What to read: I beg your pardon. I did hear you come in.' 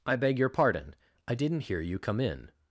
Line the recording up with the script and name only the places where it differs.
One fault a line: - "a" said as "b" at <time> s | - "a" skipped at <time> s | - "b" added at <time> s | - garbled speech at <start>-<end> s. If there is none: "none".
- "did" said as "didn't" at 1.4 s